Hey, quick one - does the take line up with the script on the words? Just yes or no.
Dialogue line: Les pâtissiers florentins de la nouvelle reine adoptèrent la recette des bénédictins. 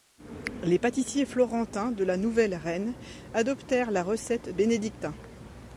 no